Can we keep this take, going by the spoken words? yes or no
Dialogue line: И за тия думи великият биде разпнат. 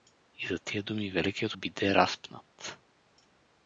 yes